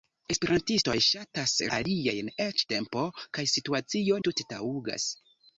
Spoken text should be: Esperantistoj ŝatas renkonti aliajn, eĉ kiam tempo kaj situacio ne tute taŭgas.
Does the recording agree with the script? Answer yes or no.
no